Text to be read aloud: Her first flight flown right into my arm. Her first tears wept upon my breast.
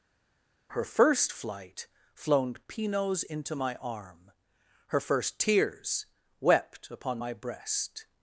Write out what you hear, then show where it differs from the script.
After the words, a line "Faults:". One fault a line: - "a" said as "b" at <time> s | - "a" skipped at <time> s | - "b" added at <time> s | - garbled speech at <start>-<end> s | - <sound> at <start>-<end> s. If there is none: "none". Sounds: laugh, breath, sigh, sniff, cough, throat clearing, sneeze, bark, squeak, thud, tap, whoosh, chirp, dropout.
Her first flight flown pinos into my arm. Her first tears wept upon my breast.
Faults:
- "right" said as "pinos" at 2.7 s